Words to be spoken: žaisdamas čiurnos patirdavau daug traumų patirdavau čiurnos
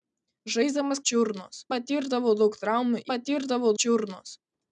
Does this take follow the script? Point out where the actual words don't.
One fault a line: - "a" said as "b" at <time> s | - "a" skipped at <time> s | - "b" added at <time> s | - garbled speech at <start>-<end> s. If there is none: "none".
none